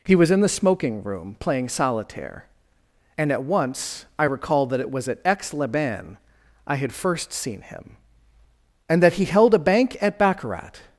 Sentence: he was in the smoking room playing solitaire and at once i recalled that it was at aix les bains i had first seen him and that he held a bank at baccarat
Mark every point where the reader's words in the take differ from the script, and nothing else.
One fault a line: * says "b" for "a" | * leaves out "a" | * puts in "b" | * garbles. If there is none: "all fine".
all fine